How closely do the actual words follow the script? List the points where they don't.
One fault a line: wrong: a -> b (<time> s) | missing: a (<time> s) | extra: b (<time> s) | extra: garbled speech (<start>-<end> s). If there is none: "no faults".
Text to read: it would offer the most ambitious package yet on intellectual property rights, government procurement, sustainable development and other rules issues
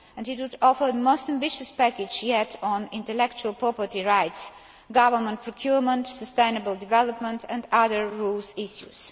missing: the (0.9 s)